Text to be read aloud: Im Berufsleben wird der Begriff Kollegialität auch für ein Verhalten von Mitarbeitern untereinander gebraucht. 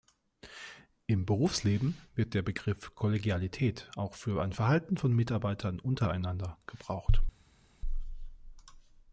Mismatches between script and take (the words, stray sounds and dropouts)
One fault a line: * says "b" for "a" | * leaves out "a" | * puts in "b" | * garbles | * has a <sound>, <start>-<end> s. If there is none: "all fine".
all fine